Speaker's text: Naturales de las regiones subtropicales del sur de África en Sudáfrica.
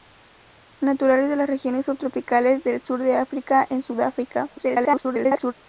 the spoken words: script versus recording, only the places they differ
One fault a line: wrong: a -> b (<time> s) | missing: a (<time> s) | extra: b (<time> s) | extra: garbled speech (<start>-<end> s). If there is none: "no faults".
extra: garbled speech (4.6-5.5 s)